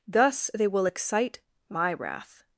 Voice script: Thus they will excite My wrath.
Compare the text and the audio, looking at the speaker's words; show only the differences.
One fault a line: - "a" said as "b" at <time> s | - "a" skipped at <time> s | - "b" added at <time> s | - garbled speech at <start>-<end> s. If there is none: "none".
none